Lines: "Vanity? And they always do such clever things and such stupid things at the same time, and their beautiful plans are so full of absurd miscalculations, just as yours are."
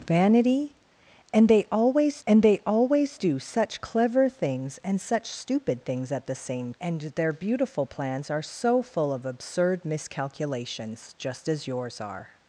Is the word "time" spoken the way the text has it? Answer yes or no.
no